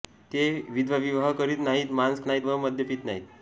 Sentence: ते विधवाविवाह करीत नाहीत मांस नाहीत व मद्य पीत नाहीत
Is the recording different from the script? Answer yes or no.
no